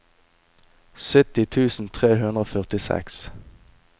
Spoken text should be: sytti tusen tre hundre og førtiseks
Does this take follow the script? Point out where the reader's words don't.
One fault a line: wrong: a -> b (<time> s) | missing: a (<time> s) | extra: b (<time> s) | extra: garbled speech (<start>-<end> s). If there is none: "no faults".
no faults